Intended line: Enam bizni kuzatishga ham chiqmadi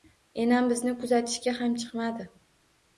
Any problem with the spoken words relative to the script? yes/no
no